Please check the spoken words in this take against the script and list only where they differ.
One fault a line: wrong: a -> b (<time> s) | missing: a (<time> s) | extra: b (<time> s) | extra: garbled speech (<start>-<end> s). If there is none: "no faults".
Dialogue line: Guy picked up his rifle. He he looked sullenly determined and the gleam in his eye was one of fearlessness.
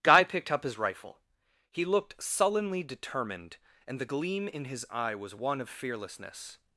missing: he (1.9 s)